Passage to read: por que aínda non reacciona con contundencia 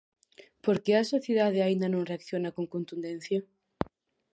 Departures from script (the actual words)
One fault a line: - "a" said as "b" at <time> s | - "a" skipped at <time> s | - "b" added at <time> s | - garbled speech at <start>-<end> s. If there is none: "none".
- "a sociedade" added at 0.9 s